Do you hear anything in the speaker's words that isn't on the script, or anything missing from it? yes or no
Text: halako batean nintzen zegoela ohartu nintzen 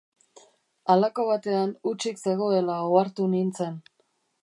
yes